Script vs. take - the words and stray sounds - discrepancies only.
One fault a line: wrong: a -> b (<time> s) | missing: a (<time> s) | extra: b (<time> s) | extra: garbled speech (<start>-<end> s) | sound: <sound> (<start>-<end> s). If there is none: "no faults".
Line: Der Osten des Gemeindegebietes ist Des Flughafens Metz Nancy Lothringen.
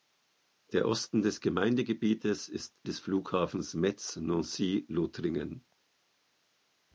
no faults